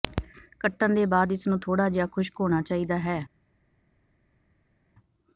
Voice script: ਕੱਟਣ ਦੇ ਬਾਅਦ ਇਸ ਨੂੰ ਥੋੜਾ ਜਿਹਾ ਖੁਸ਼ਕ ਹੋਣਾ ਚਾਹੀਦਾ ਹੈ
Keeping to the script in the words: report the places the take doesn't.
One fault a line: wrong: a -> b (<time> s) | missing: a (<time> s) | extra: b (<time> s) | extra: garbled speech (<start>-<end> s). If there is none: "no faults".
no faults